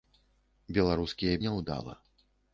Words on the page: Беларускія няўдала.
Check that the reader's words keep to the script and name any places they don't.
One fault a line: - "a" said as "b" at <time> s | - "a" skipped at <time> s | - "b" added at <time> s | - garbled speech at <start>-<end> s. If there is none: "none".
none